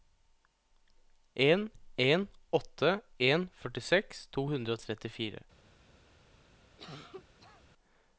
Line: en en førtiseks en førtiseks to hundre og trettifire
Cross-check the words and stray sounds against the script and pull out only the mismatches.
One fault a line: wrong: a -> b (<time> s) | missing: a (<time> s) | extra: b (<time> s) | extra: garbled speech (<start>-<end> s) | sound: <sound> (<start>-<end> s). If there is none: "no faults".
wrong: førtiseks -> åtte (2.5 s)
sound: cough (6.8-7.6 s)